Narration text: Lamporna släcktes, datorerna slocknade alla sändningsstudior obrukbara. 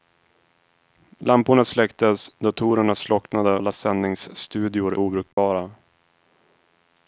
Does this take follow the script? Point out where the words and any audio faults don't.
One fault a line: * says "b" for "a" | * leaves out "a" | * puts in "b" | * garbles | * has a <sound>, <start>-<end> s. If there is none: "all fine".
* has a dropout, 5.3-5.4 s